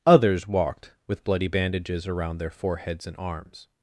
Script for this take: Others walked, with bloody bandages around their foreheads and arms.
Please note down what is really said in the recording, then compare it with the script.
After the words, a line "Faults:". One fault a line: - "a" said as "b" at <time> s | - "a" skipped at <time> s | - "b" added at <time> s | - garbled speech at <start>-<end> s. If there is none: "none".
Others walked, with bloody bandages around their foreheads and arms.
Faults:
none